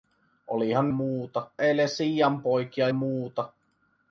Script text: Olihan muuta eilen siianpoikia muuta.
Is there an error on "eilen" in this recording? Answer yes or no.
no